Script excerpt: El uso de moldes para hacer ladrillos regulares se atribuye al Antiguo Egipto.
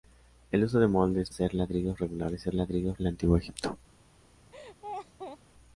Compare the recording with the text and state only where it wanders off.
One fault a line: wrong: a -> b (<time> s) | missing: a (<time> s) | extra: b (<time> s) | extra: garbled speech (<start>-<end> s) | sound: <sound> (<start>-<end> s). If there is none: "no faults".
missing: para (1.3 s)
wrong: atribuye -> ladrillos (2.5 s)
sound: laugh (4.5-5.4 s)